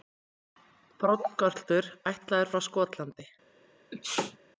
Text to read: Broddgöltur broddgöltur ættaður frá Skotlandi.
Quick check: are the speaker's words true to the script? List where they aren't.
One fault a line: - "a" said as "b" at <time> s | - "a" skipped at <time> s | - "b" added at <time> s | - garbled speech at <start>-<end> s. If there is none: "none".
- "broddgöltur" skipped at 1.9 s